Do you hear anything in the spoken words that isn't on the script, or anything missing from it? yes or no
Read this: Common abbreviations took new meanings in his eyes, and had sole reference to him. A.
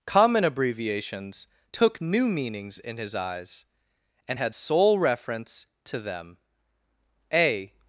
yes